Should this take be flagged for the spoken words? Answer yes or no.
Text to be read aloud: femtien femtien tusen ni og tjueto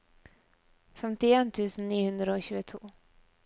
yes